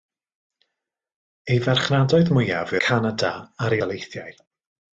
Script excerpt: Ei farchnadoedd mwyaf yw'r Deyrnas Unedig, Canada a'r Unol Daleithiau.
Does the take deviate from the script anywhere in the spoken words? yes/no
yes